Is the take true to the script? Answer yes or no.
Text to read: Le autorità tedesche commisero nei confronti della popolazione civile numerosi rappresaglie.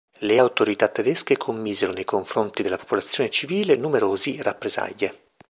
yes